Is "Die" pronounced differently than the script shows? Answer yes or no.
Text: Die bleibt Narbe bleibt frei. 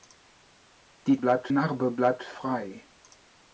no